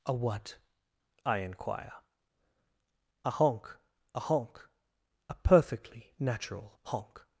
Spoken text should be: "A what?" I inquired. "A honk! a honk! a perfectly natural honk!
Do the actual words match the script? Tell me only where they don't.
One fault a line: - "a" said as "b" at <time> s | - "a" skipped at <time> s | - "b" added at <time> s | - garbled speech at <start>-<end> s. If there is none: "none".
- "inquired" said as "inquire" at 1.4 s